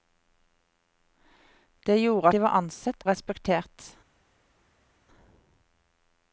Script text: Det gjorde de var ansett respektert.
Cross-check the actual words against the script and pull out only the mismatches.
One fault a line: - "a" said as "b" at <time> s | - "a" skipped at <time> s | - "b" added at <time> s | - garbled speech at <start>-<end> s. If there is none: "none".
none